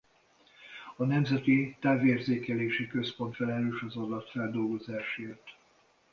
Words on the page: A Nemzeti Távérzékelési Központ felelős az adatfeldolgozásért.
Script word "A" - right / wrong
right